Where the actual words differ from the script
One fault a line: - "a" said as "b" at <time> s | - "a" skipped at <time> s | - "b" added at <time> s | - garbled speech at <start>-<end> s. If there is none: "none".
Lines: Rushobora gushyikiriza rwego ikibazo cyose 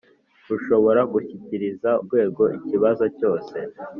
none